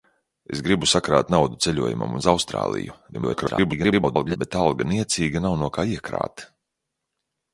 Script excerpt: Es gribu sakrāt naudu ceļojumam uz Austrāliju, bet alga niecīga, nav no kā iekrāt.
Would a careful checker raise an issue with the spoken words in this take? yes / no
yes